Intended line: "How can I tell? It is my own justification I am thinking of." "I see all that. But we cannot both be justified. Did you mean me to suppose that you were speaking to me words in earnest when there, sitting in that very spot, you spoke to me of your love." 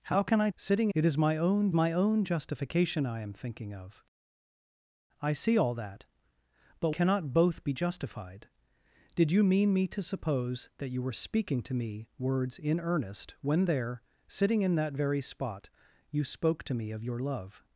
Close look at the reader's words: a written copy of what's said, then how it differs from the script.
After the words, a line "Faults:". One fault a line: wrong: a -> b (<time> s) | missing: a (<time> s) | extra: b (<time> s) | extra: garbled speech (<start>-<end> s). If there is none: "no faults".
"How can I sitting? It is my own my own justification I am thinking of." "I see all that. But cannot both be justified. Did you mean me to suppose that you were speaking to me words in earnest when there, sitting in that very spot, you spoke to me of your love."
Faults:
wrong: tell -> sitting (0.6 s)
extra: my own (1.7 s)
missing: we (6.9 s)